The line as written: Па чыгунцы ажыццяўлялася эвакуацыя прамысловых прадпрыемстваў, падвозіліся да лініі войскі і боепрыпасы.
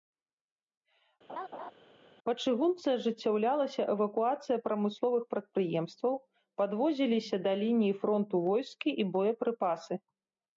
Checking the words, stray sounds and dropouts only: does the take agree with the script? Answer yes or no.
no